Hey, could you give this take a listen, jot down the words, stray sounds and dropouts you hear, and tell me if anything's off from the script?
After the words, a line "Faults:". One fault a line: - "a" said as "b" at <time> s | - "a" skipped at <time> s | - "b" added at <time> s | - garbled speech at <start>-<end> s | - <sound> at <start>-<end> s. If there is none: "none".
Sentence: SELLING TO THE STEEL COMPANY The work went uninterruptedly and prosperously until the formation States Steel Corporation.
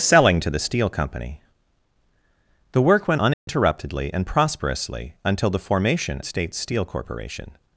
SELLING TO THE STEEL COMPANY The work went uninterruptedly and prosperously until the formation States Steel Corporation.
Faults:
- dropout at 3.3-3.5 s